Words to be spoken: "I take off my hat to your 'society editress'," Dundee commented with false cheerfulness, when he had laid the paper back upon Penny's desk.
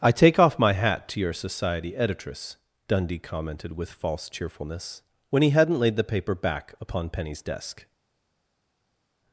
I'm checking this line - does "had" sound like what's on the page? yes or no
no